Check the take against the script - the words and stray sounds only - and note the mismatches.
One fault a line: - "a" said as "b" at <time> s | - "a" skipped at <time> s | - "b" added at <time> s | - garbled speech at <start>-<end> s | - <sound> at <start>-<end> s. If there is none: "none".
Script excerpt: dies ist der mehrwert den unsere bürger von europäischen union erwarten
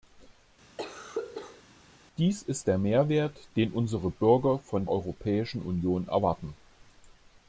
- cough at 0.8-1.6 s